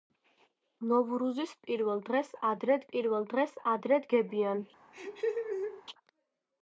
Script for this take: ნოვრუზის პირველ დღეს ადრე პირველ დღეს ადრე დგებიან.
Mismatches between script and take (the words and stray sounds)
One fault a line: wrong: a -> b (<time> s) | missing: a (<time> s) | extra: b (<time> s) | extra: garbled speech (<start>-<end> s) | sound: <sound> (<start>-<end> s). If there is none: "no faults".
sound: laugh (4.9-5.8 s)